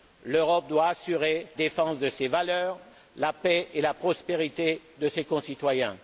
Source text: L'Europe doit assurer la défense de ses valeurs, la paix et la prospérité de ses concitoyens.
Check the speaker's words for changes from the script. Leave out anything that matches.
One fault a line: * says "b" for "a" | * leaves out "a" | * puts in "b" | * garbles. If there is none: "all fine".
* leaves out "la"